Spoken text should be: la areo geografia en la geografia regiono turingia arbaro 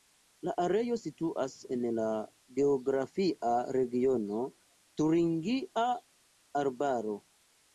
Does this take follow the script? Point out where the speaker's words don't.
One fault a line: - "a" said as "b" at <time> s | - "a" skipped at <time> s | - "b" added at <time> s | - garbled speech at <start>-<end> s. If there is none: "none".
- "geografia" said as "situas" at 1.0 s